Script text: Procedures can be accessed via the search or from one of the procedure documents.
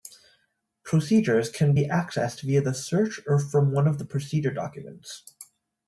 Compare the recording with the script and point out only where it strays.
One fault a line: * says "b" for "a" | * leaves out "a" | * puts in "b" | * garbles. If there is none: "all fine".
all fine